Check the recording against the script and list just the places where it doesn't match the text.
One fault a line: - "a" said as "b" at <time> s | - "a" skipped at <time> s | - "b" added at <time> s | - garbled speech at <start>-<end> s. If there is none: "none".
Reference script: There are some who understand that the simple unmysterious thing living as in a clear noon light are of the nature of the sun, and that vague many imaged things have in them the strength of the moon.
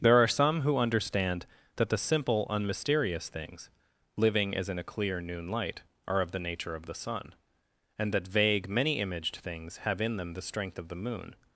- "thing" said as "things" at 3.3 s